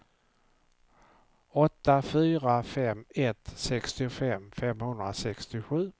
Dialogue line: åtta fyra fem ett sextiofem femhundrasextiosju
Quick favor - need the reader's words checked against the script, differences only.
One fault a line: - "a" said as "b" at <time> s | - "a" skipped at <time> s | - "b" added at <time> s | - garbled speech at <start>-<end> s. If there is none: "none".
none